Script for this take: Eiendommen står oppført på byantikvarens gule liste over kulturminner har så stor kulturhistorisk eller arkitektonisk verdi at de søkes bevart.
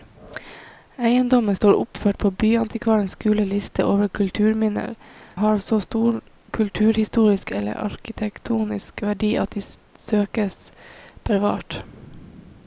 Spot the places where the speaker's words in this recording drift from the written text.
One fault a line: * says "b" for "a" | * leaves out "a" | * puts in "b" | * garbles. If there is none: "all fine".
all fine